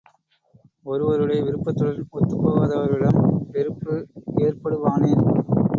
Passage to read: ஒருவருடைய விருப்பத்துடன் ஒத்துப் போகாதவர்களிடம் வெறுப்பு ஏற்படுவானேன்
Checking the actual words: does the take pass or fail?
pass